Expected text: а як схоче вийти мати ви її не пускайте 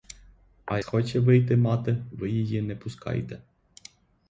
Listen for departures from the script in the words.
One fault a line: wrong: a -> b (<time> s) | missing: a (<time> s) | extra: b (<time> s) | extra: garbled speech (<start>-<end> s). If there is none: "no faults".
missing: як (0.8 s)